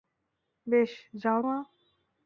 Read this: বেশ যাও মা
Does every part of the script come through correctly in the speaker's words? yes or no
yes